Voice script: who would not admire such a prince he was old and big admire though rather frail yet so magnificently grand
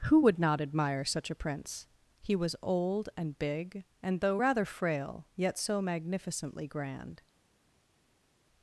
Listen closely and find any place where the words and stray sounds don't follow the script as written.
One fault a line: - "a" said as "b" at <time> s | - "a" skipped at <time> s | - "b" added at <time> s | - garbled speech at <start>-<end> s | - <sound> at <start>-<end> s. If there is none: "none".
- "admire" said as "and" at 4.0 s